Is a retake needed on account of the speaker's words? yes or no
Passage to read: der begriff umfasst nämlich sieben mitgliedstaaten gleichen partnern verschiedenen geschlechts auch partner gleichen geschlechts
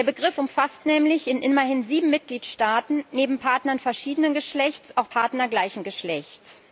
yes